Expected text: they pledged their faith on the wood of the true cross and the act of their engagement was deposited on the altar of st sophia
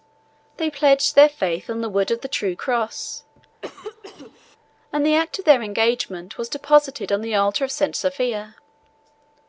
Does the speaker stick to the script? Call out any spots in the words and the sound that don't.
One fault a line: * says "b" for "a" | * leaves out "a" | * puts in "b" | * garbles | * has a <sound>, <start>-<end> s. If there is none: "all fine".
* has a cough, 3.6-4.6 s